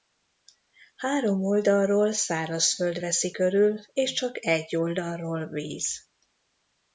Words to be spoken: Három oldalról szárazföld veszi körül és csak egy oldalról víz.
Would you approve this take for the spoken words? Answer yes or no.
yes